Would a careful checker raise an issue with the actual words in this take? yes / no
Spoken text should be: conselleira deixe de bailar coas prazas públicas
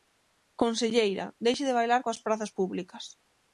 no